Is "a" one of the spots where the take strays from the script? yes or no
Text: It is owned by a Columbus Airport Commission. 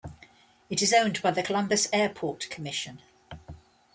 yes